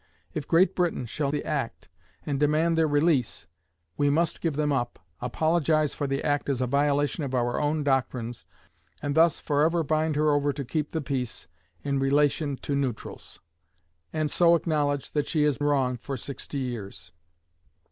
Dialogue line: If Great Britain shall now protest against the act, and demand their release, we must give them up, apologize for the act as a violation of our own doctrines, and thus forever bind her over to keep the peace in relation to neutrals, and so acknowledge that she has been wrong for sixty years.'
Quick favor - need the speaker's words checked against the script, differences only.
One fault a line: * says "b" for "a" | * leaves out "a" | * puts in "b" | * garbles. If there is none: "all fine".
* leaves out "now protest against"
* leaves out "been"